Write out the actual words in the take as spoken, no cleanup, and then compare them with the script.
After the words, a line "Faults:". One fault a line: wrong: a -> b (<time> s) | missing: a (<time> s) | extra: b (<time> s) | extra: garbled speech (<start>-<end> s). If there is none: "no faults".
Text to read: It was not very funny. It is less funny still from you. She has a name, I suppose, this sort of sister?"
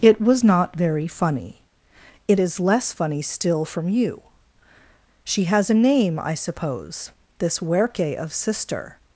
It was not very funny. It is less funny still from you. She has a name, I suppose, this werke of sister?"
Faults:
wrong: sort -> werke (7.6 s)